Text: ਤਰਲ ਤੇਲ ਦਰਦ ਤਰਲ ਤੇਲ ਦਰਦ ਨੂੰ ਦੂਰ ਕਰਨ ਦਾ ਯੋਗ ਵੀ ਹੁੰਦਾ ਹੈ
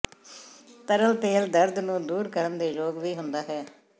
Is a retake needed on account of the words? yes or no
yes